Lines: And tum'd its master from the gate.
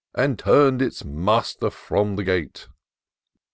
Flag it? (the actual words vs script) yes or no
no